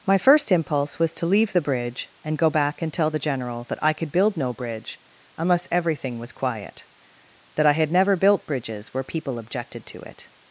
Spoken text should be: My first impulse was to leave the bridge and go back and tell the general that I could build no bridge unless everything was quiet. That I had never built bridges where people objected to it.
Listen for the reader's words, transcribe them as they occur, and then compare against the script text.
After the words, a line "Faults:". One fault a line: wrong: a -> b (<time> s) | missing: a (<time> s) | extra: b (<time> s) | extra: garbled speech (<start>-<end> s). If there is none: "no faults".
My first impulse was to leave the bridge and go back and tell the general that I could build no bridge unless everything was quiet. That I had never built bridges where people objected to it.
Faults:
no faults